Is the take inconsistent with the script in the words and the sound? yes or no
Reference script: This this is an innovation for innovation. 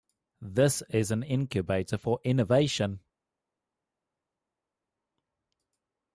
yes